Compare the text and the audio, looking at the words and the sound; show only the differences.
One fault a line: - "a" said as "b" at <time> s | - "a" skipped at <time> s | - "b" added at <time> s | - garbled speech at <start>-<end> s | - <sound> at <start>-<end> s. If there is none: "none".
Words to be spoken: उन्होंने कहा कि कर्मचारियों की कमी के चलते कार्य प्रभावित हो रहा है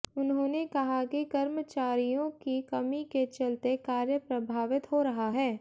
none